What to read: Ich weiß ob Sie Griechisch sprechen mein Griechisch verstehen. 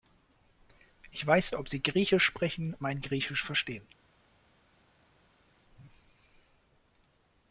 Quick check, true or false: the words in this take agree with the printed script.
true